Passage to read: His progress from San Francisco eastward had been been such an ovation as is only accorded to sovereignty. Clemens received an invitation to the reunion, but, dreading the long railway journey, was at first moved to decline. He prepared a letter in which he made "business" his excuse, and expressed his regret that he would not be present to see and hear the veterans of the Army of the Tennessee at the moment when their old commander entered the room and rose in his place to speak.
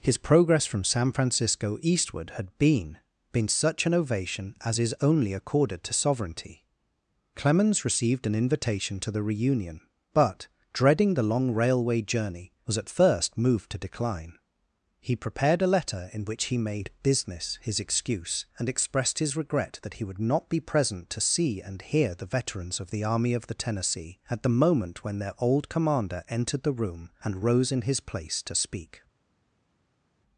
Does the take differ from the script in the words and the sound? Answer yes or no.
no